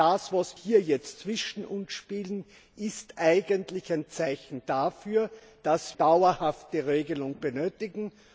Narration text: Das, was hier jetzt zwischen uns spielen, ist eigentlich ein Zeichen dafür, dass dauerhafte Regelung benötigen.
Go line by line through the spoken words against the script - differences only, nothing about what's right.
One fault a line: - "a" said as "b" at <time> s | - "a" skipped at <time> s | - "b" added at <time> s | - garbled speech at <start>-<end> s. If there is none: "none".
none